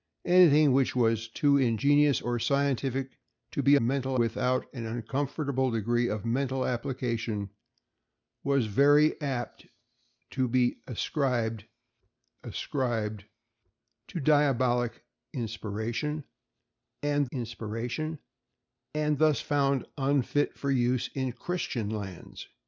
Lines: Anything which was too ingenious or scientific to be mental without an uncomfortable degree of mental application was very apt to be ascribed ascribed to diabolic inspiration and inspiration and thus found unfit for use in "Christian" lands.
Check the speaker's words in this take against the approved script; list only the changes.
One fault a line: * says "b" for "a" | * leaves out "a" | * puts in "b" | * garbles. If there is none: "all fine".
all fine